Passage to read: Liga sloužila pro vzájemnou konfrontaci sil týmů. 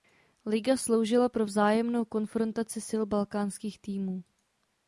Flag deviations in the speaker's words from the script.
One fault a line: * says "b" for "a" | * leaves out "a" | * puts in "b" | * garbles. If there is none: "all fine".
* puts in "balkánských"